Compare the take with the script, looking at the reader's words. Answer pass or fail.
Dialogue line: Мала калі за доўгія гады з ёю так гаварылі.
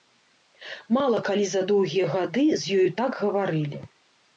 pass